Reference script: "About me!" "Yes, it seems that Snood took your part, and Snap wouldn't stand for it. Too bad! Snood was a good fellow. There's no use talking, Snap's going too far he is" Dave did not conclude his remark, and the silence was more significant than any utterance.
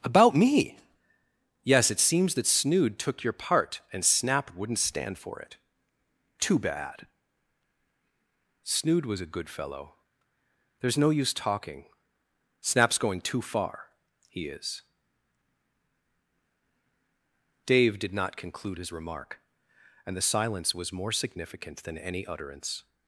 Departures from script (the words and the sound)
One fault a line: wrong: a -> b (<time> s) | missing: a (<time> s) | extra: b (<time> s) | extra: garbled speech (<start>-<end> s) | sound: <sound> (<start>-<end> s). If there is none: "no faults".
no faults